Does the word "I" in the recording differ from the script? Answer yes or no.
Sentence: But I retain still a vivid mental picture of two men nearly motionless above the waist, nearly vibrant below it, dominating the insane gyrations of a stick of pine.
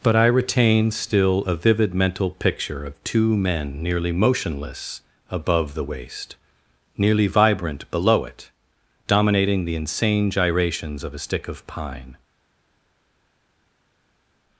no